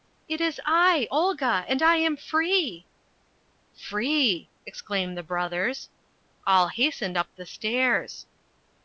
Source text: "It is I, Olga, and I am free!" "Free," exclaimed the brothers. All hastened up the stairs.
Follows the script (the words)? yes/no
yes